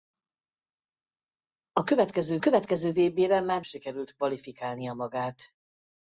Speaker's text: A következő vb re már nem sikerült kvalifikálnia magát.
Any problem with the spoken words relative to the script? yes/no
yes